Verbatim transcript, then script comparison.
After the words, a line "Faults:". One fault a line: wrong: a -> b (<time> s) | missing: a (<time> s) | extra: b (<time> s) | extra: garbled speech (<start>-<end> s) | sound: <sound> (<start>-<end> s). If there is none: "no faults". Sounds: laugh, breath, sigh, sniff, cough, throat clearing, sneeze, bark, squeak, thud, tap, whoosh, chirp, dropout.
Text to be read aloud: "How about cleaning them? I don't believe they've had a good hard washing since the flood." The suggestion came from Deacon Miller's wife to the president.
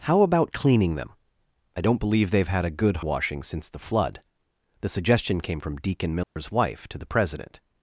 "How about cleaning them? I don't believe they've had a good washing since the flood." The suggestion came from Deacon Miller's wife to the president.
Faults:
missing: hard (3.0 s)
sound: dropout (6.2-6.4 s)